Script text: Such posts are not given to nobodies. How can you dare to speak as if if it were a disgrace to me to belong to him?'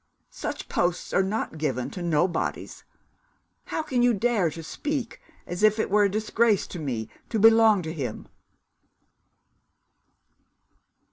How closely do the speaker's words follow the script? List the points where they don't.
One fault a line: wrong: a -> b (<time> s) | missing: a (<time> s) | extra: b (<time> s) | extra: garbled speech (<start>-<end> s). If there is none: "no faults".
missing: if (5.8 s)